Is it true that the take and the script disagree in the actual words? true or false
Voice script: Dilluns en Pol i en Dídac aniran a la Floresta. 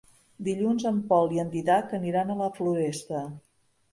false